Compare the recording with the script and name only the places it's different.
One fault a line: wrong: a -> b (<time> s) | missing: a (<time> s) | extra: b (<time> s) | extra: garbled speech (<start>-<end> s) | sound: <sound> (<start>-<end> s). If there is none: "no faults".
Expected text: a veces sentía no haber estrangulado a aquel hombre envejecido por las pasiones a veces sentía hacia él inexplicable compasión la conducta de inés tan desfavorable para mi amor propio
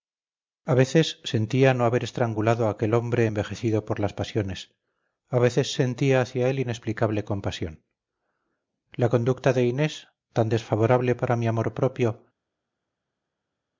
no faults